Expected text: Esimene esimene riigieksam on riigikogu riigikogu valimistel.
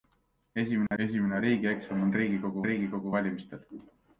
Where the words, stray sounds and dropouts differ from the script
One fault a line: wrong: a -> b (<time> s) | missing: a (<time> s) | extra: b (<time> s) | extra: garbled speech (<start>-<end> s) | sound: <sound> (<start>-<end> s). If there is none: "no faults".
sound: dropout (0.9-0.9 s)